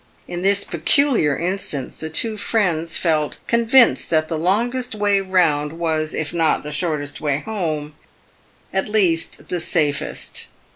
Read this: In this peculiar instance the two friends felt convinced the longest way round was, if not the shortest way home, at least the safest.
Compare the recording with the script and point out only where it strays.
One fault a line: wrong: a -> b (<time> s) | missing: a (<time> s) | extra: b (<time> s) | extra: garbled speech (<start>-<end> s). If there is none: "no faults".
extra: that (4.1 s)